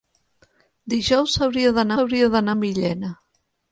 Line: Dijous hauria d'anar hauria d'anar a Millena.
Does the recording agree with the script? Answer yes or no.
yes